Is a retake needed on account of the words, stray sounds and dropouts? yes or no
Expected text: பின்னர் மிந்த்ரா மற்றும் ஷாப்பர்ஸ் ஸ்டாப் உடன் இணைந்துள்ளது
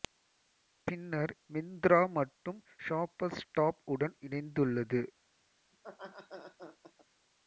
yes